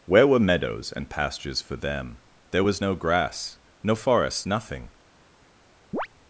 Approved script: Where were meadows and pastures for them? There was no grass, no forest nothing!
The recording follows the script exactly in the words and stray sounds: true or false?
false